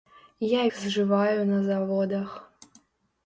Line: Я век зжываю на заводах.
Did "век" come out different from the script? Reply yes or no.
yes